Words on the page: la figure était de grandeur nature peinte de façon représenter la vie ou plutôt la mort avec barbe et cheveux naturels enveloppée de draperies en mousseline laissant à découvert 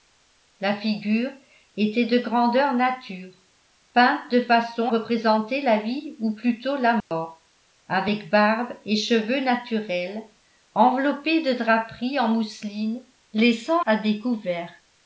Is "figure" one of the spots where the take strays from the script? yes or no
no